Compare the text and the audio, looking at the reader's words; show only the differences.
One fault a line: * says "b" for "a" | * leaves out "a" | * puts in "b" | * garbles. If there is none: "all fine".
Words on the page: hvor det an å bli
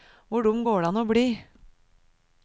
* puts in "dum går"